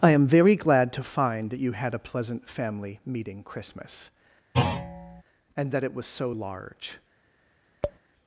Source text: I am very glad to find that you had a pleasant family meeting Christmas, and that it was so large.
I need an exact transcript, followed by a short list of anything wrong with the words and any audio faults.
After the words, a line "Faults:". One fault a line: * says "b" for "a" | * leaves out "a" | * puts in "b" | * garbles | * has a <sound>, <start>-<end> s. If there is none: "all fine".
I am very glad to find that you had a pleasant family meeting Christmas, and that it was so large.
Faults:
* has a thud, 4.5-5.2 s
* has a tap, 7.8-8.0 s